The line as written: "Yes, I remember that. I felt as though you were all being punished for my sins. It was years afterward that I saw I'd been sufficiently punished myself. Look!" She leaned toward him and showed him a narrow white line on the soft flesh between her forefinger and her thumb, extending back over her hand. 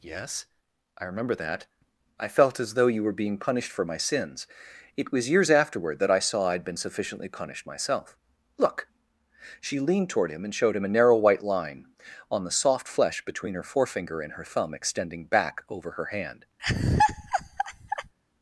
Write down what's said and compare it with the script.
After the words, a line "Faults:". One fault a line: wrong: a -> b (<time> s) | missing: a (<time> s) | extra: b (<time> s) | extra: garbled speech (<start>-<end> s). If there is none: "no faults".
"Yes, I remember that. I felt as though you were being punished for my sins. It was years afterward that I saw I'd been sufficiently punished myself. Look!" She leaned toward him and showed him a narrow white line on the soft flesh between her forefinger and her thumb, extending back over her hand.
Faults:
missing: all (3.1 s)